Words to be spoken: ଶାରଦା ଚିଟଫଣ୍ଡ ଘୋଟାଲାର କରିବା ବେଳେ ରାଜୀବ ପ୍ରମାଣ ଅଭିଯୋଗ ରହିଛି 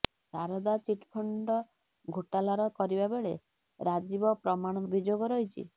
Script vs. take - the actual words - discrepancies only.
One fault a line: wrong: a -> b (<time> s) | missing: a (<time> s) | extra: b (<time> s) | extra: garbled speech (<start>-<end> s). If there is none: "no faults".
no faults